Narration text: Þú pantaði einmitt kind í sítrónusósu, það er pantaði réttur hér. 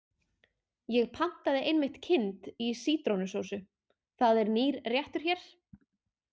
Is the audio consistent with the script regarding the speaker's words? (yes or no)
no